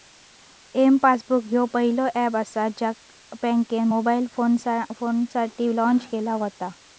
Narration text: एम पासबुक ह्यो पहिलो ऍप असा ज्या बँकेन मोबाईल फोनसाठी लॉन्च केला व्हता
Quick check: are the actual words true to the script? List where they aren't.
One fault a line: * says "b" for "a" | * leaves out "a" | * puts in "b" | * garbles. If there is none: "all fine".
all fine